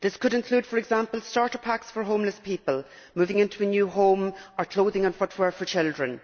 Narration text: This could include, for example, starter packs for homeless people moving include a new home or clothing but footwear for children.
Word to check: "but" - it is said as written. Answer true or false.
false